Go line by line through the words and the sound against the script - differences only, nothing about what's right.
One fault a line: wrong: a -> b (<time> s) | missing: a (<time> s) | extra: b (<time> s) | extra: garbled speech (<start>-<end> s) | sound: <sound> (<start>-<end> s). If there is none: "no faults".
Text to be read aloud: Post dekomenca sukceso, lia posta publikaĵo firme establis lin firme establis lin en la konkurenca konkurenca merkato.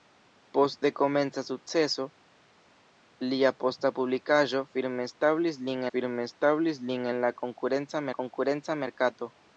no faults